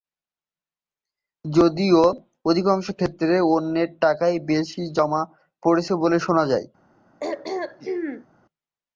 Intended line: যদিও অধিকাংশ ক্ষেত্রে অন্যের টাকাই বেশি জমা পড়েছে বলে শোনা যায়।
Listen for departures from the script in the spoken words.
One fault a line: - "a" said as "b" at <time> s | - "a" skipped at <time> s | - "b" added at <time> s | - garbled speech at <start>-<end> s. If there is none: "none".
none